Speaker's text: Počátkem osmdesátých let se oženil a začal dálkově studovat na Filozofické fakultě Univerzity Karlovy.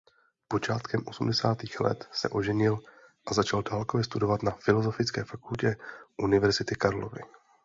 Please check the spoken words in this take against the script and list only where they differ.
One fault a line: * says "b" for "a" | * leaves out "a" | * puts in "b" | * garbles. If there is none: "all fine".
all fine